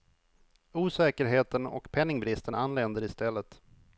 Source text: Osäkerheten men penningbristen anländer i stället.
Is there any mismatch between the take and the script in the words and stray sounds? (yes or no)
yes